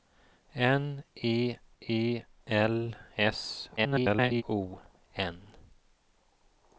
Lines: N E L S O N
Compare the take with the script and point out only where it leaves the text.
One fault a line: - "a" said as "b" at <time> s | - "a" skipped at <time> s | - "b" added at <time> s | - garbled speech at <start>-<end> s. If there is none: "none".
- "E" added at 1.8 s
- garbled speech at 3.8-4.4 s